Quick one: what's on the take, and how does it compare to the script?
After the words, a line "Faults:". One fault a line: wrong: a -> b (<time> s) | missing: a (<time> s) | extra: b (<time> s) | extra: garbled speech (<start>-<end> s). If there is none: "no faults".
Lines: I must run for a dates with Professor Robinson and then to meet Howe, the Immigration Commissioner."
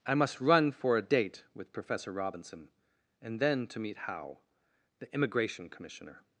I must run for a date with Professor Robinson and then to meet Howe, the Immigration Commissioner."
Faults:
wrong: dates -> date (1.0 s)